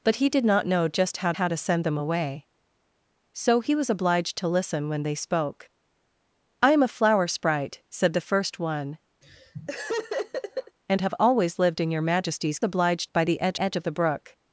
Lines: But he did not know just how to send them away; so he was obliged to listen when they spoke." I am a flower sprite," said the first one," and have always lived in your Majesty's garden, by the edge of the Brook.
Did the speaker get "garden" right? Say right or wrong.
wrong